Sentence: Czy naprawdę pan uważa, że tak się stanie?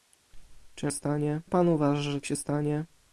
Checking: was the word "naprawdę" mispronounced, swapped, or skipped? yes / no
yes